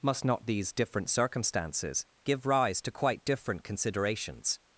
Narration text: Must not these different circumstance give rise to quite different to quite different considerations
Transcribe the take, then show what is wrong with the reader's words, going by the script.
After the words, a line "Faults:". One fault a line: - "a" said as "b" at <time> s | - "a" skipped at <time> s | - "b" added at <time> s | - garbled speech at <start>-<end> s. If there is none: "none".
Must not these different circumstances give rise to quite different considerations
Faults:
- "circumstance" said as "circumstances" at 1.1 s
- "to quite different" skipped at 3.6 s